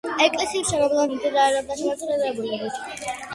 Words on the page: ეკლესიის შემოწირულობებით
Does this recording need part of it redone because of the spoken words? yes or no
yes